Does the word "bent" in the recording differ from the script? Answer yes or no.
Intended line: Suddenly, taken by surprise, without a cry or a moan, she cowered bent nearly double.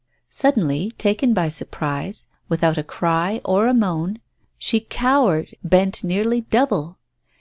no